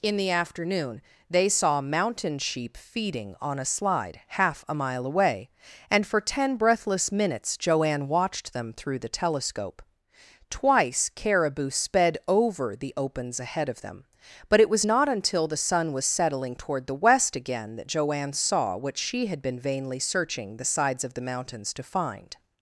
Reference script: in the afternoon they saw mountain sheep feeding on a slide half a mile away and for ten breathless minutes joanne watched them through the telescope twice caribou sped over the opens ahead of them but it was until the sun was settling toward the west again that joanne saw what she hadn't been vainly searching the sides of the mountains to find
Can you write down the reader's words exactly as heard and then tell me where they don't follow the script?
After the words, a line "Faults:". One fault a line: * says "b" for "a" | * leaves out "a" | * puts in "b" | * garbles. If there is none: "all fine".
in the afternoon they saw mountain sheep feeding on a slide half a mile away and for ten breathless minutes joanne watched them through the telescope twice caribou sped over the opens ahead of them but it was not until the sun was settling toward the west again that joanne saw what she had been vainly searching the sides of the mountains to find
Faults:
* puts in "not"
* says "had" for "hadn't"